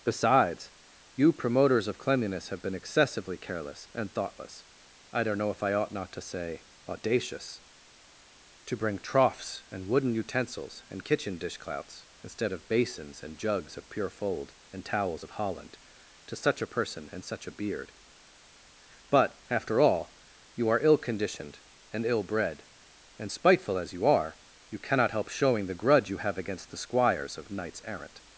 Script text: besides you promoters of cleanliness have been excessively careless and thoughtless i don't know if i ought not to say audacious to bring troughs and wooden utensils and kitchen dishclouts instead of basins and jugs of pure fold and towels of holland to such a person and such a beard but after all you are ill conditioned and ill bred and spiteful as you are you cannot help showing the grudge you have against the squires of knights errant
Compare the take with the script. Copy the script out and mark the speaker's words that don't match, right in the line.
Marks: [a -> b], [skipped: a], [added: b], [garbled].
besides you promoters of cleanliness have been excessively careless and thoughtless i don't know if i ought not to say audacious to bring troughs and wooden utensils and kitchen dishclouts instead of basins and jugs of pure fold and towels of holland to such a person and such a beard but after all you are ill conditioned and ill bred and spiteful as you are you cannot help showing the grudge you have against the squires of knights errant